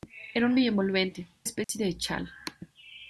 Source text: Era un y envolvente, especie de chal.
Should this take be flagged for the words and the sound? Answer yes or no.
yes